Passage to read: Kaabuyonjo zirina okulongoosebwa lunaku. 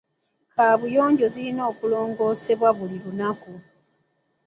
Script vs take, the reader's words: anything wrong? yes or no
yes